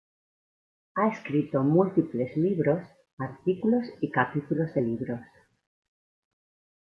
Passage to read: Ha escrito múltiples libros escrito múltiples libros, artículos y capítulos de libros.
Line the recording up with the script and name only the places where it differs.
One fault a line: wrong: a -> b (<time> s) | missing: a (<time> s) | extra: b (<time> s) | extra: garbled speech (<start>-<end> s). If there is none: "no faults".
missing: escrito múltiples libros (2.8 s)